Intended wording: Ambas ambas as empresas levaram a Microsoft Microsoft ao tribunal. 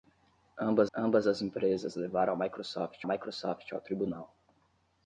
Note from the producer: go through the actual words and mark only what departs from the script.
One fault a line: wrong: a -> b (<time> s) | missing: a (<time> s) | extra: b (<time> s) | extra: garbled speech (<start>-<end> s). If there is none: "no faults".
no faults